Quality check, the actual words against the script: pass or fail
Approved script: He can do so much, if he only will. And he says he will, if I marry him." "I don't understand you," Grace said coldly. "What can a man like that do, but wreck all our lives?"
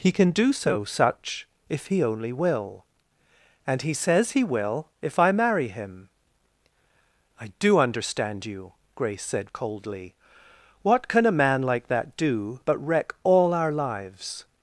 fail